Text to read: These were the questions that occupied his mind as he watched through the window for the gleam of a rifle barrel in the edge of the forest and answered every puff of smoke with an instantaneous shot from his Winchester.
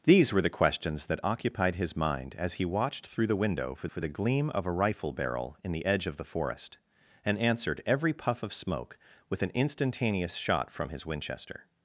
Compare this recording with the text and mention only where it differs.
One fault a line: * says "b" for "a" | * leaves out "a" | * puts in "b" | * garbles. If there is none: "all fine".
* puts in "for"